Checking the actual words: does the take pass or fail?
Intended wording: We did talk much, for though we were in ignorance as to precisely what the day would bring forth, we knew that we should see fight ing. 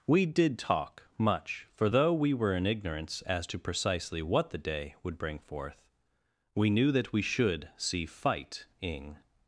pass